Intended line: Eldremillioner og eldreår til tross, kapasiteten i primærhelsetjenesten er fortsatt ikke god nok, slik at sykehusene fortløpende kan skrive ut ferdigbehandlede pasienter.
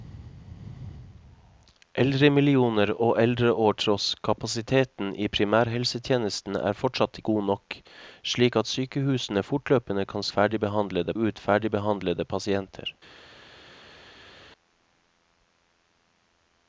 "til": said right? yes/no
no